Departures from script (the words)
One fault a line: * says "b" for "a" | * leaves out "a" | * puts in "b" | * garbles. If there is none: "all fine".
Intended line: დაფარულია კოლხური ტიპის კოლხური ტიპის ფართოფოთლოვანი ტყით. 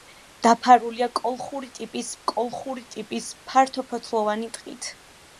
all fine